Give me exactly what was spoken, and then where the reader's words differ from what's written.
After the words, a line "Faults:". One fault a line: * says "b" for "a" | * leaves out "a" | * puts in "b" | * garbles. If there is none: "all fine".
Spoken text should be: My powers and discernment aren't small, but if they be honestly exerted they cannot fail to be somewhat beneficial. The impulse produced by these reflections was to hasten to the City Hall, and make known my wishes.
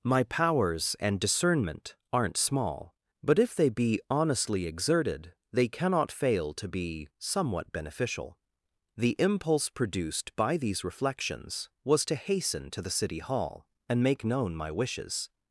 My powers and discernment aren't small, but if they be honestly exerted they cannot fail to be somewhat beneficial. The impulse produced by these reflections was to hasten to the City Hall, and make known my wishes.
Faults:
all fine